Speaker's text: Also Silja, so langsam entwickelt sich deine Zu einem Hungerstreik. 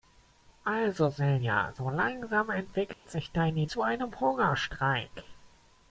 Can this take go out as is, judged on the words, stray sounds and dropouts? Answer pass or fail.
fail